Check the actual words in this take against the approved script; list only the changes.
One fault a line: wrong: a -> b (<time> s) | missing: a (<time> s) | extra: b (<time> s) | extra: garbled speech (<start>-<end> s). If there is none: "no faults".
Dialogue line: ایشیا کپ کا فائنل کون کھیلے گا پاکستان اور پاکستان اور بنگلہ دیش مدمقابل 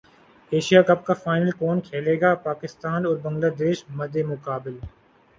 missing: پاکستان اور (3.2 s)